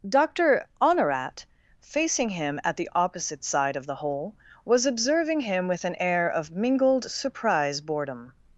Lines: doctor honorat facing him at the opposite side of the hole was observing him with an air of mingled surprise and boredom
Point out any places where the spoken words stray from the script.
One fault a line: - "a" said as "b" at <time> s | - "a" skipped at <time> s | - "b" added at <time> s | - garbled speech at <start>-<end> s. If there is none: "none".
- "and" skipped at 7.8 s